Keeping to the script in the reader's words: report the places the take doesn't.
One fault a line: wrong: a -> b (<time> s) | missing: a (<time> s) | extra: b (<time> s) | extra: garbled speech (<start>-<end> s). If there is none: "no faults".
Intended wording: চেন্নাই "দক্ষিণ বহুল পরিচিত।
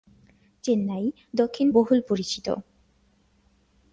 no faults